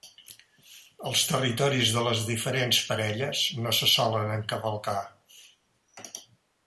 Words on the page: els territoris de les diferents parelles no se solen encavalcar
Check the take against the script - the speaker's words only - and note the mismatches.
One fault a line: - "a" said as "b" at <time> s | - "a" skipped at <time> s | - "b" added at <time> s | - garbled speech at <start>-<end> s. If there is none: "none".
none